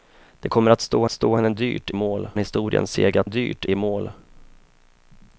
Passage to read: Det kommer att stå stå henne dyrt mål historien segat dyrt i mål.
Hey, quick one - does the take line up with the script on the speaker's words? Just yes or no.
yes